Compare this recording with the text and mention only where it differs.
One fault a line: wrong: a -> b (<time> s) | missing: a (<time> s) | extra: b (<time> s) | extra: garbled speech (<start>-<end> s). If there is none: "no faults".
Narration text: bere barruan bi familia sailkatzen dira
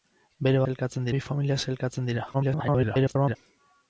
wrong: barruan -> sailkatzen (0.7 s)
extra: garbled speech (2.3-3.4 s)